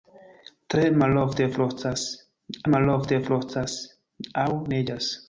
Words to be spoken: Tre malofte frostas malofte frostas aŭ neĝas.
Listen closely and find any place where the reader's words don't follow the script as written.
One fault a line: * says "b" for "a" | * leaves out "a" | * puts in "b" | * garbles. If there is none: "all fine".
all fine